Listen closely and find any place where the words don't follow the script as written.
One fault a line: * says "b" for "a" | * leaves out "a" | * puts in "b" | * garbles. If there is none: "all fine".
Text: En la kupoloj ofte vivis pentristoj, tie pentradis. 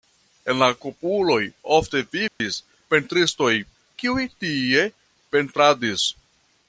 * puts in "kiuj"